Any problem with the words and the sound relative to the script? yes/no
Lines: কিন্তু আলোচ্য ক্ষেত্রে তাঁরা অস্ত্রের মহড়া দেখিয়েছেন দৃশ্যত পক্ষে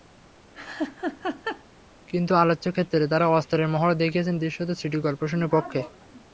yes